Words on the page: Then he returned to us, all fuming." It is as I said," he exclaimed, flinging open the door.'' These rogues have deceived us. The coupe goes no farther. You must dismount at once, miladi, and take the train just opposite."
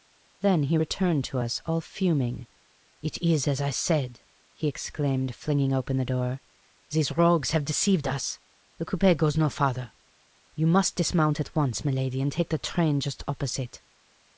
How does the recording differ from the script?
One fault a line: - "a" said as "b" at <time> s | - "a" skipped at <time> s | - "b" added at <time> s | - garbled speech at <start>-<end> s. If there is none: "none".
none